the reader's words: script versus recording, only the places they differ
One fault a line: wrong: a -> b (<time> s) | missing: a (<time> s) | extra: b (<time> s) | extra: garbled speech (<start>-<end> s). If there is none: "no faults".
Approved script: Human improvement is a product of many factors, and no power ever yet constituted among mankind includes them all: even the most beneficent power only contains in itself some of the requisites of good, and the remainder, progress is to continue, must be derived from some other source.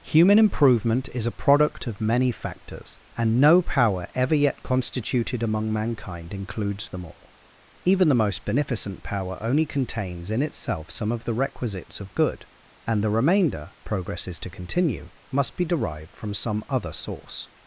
no faults